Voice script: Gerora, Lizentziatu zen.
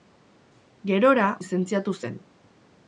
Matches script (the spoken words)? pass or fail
pass